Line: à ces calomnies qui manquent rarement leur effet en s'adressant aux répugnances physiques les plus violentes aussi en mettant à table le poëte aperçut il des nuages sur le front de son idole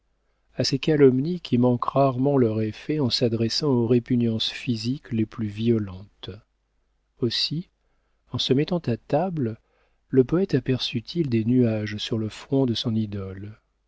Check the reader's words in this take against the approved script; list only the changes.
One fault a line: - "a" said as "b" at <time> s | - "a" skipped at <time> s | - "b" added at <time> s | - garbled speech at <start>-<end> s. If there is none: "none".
- "se" added at 8.4 s